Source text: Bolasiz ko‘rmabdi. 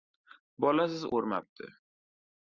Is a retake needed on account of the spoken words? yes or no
no